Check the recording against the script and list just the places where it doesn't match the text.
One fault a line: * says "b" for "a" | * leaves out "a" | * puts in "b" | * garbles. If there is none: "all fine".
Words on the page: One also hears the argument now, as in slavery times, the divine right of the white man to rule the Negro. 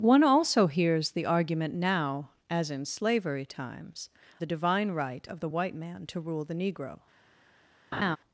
all fine